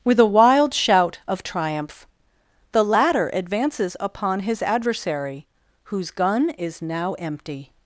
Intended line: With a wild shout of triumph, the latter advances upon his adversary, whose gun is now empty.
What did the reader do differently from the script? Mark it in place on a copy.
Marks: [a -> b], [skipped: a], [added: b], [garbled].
With a wild shout of triumph, the latter advances upon his adversary, whose gun is now empty.